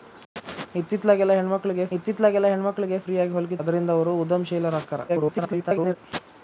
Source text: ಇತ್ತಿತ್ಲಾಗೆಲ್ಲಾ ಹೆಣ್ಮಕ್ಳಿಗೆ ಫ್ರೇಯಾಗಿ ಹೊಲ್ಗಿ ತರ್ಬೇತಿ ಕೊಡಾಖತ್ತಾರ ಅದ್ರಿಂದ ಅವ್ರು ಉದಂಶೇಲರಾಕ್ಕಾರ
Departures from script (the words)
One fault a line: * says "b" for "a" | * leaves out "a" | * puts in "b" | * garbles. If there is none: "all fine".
* puts in "ಇತ್ತಿತ್ಲಾಗೆಲ್ಲಾ ಹೆಣ್ಮಕ್ಳಿಗೆ"
* leaves out "ತರ್ಬೇತಿ ಕೊಡಾಖತ್ತಾರ"
* garbles